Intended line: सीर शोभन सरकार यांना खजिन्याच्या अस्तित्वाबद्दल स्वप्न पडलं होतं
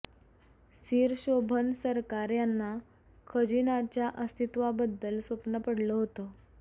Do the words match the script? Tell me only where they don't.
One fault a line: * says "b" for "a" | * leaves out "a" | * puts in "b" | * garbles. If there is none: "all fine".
all fine